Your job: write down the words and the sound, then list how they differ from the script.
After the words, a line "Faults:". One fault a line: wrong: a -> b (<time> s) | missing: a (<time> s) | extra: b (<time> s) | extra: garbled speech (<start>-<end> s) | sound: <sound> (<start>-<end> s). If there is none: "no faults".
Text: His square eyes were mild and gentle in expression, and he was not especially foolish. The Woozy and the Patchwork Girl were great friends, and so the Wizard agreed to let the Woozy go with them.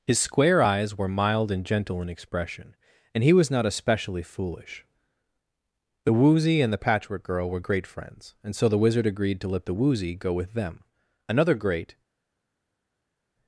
His square eyes were mild and gentle in expression, and he was not especially foolish. The Woozy and the Patchwork Girl were great friends, and so the Wizard agreed to let the Woozy go with them. Another great
Faults:
extra: Another great (11.3 s)